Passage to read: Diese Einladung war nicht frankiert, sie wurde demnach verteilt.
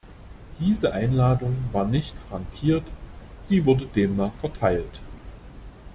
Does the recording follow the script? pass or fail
pass